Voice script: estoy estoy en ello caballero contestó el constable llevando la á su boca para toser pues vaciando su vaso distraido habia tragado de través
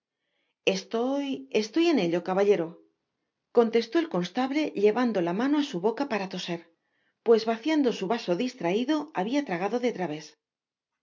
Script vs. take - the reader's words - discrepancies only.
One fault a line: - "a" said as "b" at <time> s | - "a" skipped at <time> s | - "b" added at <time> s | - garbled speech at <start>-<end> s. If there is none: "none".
- "mano" added at 5.4 s